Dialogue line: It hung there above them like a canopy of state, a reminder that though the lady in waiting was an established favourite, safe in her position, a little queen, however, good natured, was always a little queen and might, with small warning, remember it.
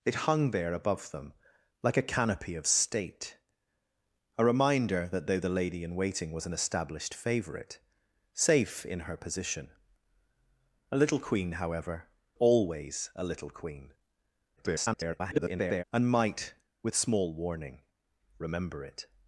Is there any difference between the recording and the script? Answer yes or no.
yes